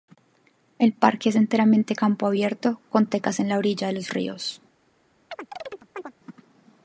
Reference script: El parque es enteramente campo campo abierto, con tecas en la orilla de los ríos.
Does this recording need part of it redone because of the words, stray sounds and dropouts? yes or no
yes